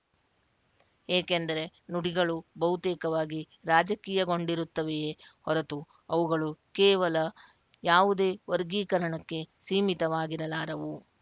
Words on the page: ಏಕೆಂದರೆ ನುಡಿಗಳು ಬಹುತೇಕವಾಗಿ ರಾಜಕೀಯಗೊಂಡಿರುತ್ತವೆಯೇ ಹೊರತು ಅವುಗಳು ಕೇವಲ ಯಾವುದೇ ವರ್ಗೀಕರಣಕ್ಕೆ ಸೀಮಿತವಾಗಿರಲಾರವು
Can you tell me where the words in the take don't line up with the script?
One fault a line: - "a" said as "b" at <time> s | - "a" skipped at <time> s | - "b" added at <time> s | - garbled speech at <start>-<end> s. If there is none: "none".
none